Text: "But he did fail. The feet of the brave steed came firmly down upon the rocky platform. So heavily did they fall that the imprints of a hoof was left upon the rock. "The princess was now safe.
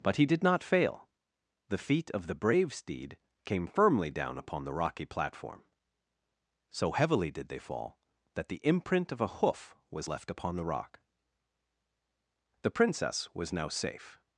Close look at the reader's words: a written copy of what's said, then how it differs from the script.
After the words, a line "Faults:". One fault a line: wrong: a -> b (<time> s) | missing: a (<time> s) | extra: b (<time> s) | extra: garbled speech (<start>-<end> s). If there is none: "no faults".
"But he did not fail. The feet of the brave steed came firmly down upon the rocky platform. So heavily did they fall that the imprint of a hoof was left upon the rock. "The princess was now safe.
Faults:
extra: not (0.4 s)
wrong: imprints -> imprint (8.6 s)